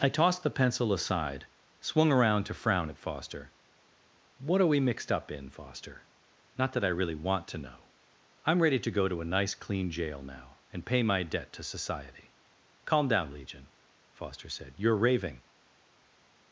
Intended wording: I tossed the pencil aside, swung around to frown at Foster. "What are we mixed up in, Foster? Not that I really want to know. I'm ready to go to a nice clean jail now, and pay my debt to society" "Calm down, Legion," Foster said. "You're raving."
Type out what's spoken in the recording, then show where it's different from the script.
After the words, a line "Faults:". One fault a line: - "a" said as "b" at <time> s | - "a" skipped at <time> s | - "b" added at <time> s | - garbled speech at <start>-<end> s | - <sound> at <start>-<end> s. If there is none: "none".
I tossed the pencil aside, swung around to frown at Foster. "What are we mixed up in, Foster? Not that I really want to know. I'm ready to go to a nice clean jail now, and pay my debt to society" "Calm down, Legion," Foster said. "You're raving."
Faults:
none